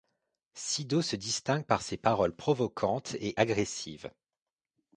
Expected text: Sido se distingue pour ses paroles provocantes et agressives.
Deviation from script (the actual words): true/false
true